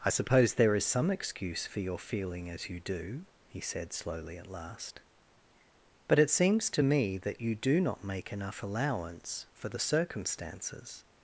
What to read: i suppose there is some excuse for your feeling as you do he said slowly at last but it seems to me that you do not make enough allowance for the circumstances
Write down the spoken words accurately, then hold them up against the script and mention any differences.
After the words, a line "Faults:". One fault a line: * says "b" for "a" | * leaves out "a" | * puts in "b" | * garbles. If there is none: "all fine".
i suppose there is some excuse for your feeling as you do he said slowly at last but it seems to me that you do not make enough allowance for the circumstances
Faults:
all fine